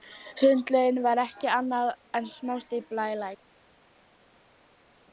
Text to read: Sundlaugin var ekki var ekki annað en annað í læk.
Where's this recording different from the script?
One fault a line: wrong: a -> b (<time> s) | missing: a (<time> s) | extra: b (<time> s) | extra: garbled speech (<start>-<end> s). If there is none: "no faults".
missing: var ekki (1.5 s)
wrong: annað -> smástífla (2.4 s)